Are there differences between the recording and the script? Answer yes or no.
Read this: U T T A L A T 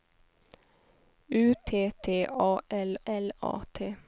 yes